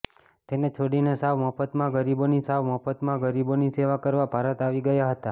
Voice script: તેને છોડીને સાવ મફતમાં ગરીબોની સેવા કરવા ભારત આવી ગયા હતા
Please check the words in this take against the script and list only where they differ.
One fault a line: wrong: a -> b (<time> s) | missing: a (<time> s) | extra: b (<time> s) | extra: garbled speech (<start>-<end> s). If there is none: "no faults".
extra: સાવ મફતમાં ગરીબોની (2.4 s)